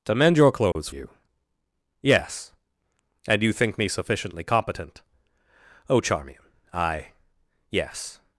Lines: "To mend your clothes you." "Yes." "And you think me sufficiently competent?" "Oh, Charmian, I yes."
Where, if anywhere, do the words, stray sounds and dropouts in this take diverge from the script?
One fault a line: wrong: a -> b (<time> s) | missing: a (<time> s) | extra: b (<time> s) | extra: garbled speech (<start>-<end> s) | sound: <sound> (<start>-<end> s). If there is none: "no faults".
sound: dropout (0.7-0.8 s)